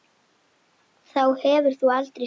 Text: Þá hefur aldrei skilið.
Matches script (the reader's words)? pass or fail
fail